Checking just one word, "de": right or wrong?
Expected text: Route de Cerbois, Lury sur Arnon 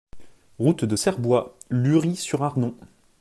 right